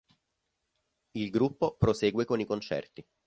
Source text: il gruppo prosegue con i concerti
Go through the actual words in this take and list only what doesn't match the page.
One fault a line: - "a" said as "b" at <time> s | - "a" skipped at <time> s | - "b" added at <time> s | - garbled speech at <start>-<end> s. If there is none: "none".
none